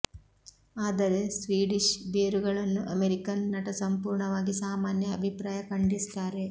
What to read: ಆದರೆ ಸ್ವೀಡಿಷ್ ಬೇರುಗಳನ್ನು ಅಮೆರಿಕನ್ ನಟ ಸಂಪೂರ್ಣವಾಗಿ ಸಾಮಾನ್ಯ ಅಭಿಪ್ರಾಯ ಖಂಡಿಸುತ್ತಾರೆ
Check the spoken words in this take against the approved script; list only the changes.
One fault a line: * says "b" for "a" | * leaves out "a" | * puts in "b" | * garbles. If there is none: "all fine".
all fine